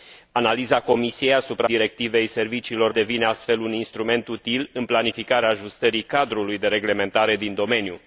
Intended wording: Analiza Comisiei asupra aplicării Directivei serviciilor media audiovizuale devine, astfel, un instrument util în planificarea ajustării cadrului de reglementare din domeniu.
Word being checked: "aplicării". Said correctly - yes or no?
no